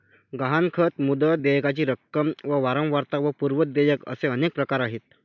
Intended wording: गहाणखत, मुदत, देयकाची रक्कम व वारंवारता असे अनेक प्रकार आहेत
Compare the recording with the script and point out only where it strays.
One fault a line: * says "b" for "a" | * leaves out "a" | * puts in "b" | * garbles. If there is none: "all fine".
* puts in "व पूर्व देयक"